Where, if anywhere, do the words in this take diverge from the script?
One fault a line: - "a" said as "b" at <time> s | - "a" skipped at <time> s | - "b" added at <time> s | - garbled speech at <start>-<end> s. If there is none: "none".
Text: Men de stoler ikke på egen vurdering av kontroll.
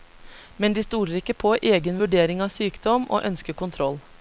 - "sykdom og ønsker" added at 2.5 s